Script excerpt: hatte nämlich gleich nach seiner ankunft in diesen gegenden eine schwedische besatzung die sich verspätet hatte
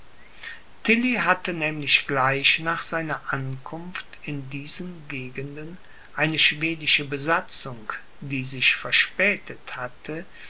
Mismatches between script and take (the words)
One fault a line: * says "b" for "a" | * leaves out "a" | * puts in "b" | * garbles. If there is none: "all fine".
all fine